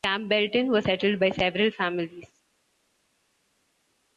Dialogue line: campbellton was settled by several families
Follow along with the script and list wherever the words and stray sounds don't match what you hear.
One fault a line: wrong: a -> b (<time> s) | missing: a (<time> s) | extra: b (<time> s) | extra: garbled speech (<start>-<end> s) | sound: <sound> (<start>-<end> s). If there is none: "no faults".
no faults